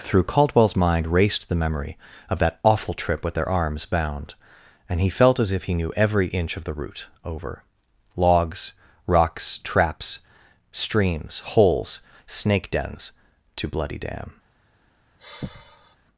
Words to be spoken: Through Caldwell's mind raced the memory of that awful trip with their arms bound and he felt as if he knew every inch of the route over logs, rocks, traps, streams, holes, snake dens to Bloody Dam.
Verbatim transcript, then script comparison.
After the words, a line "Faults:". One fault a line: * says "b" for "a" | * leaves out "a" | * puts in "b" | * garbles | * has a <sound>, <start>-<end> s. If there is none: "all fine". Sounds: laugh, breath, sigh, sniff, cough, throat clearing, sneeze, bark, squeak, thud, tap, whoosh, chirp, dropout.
Through Caldwell's mind raced the memory of that awful trip with their arms bound and he felt as if he knew every inch of the route over logs, rocks, traps, streams, holes, snake dens to Bloody Dam.
Faults:
* has a sigh, 15.2-16.0 s